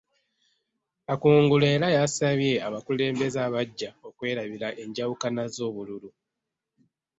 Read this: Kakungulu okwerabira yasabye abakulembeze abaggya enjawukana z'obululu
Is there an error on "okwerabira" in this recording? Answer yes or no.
yes